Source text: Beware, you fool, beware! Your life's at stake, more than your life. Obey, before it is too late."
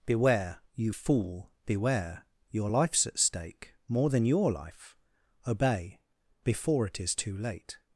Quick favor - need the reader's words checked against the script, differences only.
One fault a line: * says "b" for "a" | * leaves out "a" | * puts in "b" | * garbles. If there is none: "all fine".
all fine